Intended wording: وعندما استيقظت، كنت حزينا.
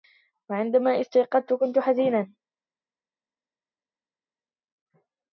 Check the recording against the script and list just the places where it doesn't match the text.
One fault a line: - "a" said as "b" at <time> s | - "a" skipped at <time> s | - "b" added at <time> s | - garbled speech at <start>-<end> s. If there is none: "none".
none